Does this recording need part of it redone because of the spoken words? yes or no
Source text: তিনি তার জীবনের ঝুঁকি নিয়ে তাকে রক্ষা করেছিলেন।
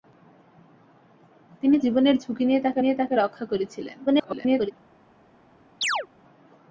yes